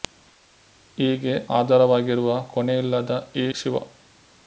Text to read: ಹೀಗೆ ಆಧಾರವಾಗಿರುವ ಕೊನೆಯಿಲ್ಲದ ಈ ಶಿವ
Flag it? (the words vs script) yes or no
no